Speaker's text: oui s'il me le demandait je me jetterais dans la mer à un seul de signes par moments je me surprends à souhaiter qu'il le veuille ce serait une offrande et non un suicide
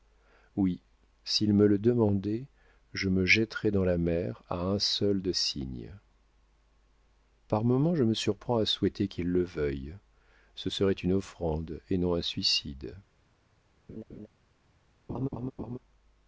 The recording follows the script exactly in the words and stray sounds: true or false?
false